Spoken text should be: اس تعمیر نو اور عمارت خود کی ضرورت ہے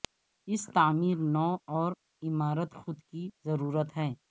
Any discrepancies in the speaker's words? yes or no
no